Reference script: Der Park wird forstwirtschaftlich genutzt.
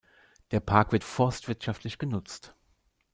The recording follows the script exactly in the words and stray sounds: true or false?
true